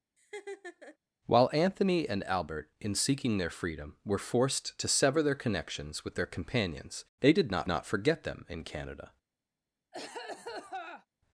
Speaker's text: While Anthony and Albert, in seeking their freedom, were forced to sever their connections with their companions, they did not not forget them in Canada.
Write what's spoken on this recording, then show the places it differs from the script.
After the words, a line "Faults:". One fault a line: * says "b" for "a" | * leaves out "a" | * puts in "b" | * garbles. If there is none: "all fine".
While Anthony and Albert, in seeking their freedom, were forced to sever their connections with their companions, they did not not forget them in Canada.
Faults:
all fine